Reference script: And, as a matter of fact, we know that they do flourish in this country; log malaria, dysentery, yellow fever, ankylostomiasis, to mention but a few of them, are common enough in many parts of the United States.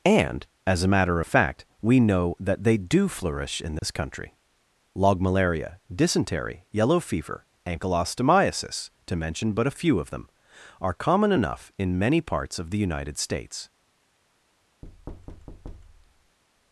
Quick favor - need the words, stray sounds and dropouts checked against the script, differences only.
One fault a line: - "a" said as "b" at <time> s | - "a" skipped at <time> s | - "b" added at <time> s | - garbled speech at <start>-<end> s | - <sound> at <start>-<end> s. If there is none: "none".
- dropout at 3.8-3.8 s
- thud at 14.8-16.4 s